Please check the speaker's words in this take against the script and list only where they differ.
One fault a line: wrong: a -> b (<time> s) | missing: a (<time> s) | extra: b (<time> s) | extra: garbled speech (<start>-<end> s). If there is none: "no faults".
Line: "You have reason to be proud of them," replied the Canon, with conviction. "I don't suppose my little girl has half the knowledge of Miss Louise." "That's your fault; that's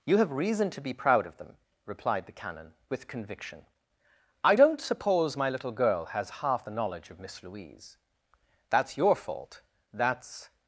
no faults